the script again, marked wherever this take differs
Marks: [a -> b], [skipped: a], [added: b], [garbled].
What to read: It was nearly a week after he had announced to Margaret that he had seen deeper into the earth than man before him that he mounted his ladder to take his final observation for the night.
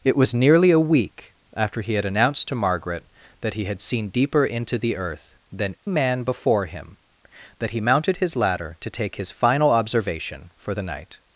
It was nearly a week after he had announced to Margaret that he had seen deeper into the earth than man before him that he mounted his ladder to take his final observation for the night.